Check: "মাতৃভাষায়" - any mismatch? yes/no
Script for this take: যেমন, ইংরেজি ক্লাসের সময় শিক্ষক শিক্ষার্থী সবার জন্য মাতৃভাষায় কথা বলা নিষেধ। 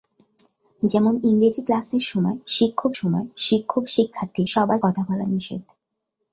yes